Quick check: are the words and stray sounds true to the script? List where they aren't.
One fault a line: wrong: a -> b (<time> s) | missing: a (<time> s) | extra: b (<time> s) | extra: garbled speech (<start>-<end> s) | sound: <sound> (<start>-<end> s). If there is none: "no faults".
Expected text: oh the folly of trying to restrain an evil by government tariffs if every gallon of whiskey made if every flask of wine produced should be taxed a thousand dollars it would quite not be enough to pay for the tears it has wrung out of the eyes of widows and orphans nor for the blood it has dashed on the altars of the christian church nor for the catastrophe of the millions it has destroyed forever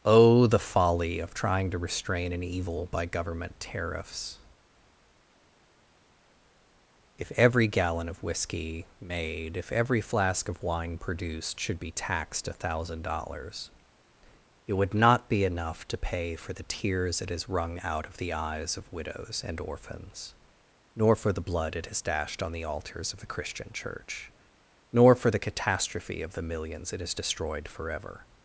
missing: quite (14.9 s)